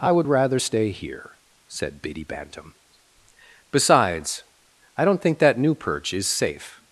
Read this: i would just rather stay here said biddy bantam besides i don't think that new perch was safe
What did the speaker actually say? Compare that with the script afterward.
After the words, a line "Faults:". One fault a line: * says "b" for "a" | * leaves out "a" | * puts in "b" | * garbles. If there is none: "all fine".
i would rather stay here said biddy bantam besides i don't think that new perch is safe
Faults:
* leaves out "just"
* says "is" for "was"